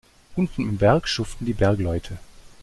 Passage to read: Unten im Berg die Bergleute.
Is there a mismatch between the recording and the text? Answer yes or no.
yes